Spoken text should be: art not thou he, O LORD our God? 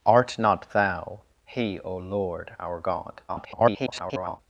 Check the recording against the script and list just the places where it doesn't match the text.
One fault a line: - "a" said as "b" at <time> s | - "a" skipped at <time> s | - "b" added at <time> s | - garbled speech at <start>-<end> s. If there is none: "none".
- garbled speech at 3.3-4.4 s